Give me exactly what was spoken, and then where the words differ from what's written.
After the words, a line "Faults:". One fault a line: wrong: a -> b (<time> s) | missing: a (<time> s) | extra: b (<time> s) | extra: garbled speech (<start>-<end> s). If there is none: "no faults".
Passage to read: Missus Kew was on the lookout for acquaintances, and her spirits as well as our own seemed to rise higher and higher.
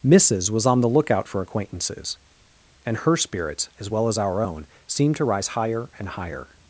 Missus was on the lookout for acquaintances, and her spirits as well as our own seemed to rise higher and higher.
Faults:
missing: Kew (0.5 s)